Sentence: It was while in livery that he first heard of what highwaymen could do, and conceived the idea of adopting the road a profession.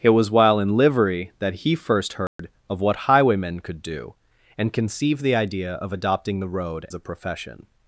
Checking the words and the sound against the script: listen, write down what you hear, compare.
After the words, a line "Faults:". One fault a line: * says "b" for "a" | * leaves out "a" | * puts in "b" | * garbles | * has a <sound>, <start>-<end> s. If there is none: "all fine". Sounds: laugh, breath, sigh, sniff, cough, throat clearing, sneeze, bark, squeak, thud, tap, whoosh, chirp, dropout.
It was while in livery that he first heard of what highwaymen could do, and conceived the idea of adopting the road a profession.
Faults:
* has a dropout, 2.3-2.4 s